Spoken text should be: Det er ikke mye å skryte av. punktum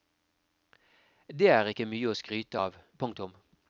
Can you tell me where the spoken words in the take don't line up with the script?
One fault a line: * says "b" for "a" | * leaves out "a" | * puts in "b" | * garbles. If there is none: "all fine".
all fine